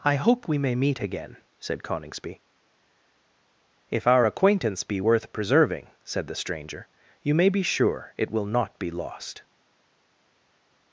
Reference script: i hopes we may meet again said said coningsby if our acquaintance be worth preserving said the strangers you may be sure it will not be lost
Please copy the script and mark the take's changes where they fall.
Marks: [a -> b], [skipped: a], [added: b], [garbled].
i [hopes -> hope] we may meet again said [skipped: said] coningsby if our acquaintance be worth preserving said the [strangers -> stranger] you may be sure it will not be lost